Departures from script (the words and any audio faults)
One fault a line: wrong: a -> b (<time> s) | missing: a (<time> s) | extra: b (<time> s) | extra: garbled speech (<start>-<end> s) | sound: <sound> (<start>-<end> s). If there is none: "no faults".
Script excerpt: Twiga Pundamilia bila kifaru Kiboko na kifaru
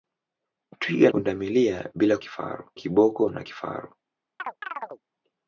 sound: chirp (4.4-5.0 s)